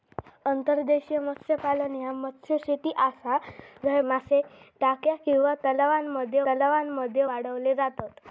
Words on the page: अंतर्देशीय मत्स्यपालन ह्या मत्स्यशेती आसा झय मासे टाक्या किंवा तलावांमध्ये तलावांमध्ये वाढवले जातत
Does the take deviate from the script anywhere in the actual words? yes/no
no